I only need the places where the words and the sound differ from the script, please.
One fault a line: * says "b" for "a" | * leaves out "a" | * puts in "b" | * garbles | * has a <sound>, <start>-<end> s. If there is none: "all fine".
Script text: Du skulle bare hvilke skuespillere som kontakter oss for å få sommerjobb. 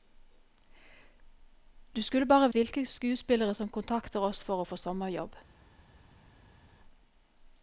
all fine